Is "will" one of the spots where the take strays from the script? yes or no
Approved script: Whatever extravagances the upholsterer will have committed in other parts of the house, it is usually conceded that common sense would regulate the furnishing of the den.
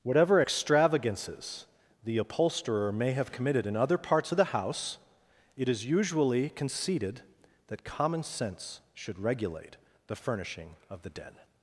yes